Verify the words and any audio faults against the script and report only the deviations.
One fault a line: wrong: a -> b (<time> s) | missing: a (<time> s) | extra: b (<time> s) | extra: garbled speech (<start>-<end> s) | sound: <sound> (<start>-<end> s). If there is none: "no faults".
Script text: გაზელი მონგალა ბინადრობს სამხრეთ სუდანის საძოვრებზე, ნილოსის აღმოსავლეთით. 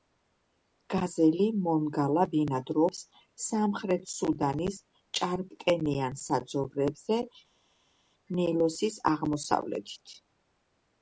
extra: ჭარბტენიან (5.2 s)